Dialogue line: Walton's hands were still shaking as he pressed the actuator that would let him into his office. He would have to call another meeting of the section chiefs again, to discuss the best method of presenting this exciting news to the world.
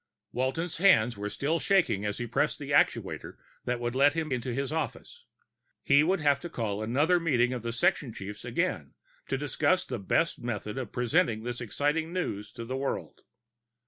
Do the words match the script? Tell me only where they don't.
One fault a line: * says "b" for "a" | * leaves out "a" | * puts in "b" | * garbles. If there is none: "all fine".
all fine